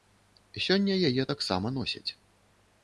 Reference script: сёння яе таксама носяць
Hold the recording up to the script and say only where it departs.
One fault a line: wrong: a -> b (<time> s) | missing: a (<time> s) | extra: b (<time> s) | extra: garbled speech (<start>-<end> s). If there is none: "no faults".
no faults